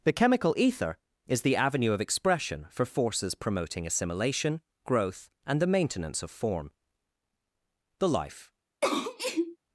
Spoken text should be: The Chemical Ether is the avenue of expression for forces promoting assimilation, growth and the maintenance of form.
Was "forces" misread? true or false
false